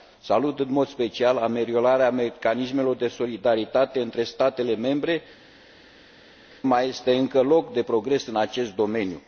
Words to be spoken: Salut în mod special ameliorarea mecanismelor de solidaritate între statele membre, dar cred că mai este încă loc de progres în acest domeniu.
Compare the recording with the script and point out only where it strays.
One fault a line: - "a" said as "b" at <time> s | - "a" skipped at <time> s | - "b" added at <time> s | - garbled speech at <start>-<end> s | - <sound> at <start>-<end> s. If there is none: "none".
- "dar cred că" skipped at 5.2 s